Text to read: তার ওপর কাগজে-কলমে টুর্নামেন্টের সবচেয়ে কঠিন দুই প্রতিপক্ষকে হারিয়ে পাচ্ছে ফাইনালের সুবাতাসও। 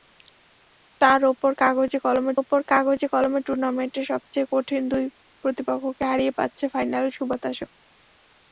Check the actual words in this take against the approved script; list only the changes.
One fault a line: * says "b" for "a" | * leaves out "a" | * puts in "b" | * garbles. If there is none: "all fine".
* puts in "ওপর কাগজে-কলমে"